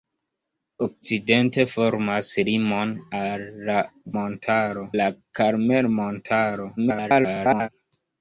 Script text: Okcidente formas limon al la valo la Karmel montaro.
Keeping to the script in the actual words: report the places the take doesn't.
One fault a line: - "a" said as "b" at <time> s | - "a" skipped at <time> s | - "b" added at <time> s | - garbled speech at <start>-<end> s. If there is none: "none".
- "valo" said as "montaro" at 4.1 s
- garbled speech at 6.8-7.7 s